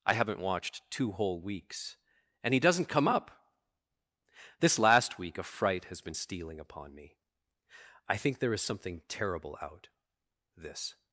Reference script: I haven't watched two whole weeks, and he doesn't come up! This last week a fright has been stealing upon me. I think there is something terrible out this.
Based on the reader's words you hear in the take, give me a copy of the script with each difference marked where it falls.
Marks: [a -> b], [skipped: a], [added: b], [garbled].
I haven't watched two whole weeks, and he doesn't come up! This last week a fright has been stealing upon me. I think there is something terrible out this.